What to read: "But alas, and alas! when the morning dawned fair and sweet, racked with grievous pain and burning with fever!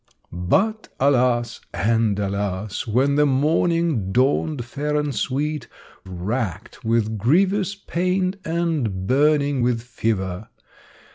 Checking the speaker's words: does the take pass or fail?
pass